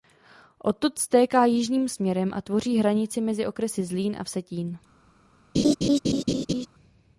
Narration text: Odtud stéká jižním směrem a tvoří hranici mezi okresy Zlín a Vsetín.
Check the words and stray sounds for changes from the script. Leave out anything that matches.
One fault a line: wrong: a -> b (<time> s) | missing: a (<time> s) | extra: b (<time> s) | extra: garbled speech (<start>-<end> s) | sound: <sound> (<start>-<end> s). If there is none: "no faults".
sound: laugh (5.5-6.7 s)